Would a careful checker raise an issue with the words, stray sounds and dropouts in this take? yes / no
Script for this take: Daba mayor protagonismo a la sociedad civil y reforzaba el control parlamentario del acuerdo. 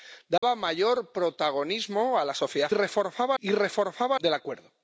yes